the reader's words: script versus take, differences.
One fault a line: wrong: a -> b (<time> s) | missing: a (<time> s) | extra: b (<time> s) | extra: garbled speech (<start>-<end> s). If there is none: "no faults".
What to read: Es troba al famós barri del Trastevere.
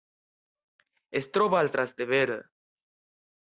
missing: famós barri del (1.7 s)